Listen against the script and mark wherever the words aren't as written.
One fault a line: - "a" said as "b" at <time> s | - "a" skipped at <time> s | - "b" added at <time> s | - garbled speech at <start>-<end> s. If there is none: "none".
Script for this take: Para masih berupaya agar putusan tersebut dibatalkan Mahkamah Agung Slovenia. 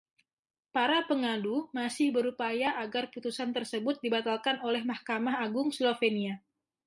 - "pengadu" added at 1.1 s
- "oleh" added at 4.7 s